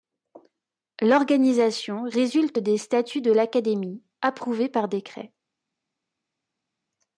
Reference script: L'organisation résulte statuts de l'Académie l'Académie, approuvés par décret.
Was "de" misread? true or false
false